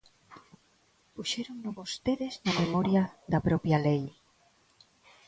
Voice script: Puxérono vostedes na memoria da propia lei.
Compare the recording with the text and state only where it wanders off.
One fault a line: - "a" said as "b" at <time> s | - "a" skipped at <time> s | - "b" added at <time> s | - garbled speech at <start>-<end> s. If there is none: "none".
none